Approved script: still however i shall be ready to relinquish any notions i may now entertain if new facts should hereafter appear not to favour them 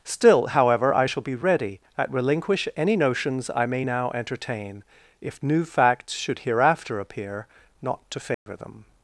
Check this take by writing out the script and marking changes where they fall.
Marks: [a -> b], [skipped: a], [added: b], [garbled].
still however i shall be ready [to -> at] relinquish any notions i may now entertain if new facts should hereafter appear not to favour them